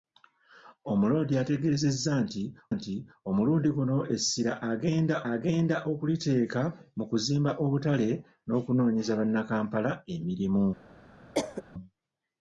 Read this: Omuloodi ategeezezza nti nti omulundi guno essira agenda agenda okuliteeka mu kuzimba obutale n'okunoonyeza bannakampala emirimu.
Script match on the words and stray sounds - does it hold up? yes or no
no